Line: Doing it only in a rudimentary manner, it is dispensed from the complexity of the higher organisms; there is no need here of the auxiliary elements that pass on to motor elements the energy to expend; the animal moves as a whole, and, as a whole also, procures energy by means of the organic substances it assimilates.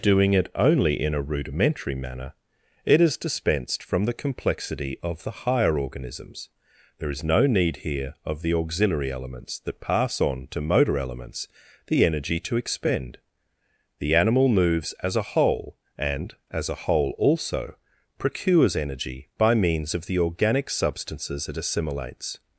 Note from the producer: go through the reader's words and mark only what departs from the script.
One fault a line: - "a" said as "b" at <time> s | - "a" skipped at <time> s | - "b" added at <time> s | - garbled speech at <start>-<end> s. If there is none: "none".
none